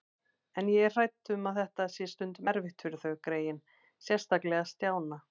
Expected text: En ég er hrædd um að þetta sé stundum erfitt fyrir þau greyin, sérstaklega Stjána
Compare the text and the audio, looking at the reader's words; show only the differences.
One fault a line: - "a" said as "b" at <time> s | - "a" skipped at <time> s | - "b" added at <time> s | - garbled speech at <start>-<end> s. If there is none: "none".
none